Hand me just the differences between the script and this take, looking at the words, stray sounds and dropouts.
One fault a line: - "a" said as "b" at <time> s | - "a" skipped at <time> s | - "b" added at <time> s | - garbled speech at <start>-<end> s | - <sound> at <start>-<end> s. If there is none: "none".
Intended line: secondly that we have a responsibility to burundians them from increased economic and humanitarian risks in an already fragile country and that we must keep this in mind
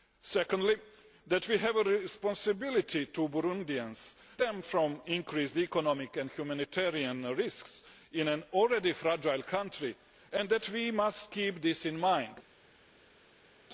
none